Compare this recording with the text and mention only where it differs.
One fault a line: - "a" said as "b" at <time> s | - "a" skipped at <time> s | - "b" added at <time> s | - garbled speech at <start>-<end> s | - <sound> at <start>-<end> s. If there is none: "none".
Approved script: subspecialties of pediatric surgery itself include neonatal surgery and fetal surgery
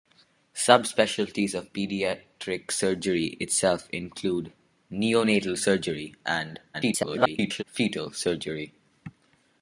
- garbled speech at 6.7-7.6 s